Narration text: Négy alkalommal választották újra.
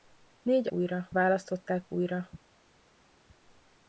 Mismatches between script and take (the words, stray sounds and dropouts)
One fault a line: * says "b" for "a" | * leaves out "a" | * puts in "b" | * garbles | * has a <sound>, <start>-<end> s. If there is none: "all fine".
* says "újra" for "alkalommal"